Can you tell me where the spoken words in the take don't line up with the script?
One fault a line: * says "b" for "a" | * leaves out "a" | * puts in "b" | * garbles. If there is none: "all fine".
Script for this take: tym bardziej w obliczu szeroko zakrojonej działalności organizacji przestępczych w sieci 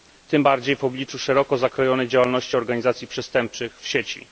all fine